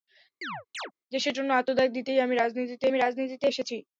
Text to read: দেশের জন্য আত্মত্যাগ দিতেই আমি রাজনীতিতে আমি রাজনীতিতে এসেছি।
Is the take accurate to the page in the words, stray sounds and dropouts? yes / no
no